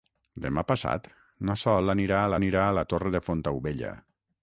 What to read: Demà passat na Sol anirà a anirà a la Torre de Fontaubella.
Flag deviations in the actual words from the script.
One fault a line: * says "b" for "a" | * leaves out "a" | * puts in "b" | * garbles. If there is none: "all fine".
all fine